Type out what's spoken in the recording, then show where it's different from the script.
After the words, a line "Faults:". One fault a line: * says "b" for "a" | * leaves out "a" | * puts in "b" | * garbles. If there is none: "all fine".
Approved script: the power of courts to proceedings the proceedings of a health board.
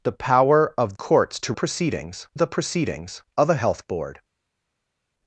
the power of courts to proceedings the proceedings of a health board.
Faults:
all fine